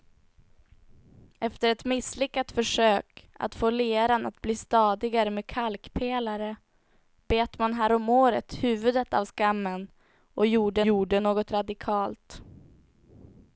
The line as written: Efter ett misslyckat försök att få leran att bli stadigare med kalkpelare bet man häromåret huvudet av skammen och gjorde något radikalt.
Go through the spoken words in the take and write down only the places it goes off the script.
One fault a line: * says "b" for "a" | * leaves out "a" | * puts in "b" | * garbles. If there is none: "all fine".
* puts in "gjorde"